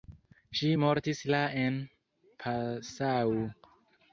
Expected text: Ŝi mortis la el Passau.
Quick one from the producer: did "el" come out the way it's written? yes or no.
no